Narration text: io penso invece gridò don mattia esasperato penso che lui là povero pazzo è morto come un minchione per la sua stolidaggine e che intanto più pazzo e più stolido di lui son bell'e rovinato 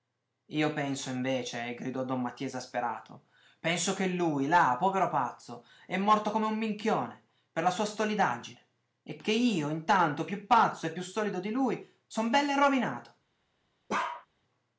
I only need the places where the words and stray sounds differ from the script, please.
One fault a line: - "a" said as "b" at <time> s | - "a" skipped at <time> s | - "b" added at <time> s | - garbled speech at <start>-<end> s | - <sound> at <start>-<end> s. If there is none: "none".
- "io" added at 9.3 s
- bark at 13.9-14.3 s